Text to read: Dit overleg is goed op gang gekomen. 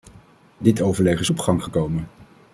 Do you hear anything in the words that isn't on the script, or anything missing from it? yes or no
yes